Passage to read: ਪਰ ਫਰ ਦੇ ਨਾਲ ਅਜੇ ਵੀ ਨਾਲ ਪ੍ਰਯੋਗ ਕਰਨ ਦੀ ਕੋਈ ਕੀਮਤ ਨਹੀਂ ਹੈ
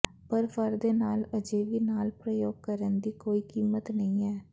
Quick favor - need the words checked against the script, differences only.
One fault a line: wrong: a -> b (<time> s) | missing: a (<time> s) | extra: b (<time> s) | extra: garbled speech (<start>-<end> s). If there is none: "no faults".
no faults